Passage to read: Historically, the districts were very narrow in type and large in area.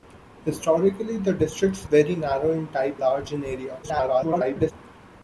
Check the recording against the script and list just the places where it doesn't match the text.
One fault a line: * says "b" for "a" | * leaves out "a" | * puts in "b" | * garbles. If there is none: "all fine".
* leaves out "were"
* leaves out "and"
* garbles